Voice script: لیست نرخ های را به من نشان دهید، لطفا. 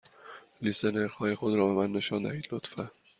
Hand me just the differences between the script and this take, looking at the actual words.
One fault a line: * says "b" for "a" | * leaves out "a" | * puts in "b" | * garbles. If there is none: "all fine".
* puts in "خود"